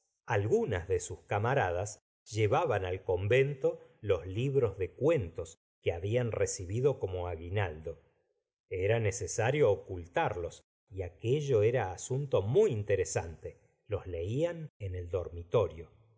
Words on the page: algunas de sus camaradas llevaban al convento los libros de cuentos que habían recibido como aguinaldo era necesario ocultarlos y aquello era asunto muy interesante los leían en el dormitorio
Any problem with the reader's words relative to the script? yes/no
no